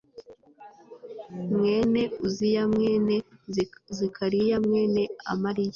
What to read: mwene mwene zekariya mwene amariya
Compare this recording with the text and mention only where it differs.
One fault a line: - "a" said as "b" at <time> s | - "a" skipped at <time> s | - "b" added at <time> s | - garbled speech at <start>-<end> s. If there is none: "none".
- "uziya" added at 2.2 s